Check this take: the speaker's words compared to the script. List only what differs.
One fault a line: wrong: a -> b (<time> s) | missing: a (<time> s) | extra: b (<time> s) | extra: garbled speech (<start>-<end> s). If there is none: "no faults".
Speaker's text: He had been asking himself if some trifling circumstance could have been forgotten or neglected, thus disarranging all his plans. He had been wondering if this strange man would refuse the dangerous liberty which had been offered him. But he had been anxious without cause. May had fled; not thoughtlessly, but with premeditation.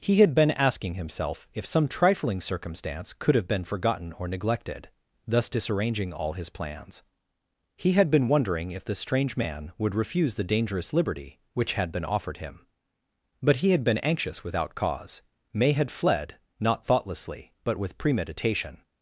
wrong: this -> the (8.8 s)